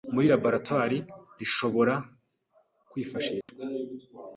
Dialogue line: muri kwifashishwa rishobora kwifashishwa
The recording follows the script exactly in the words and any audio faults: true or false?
false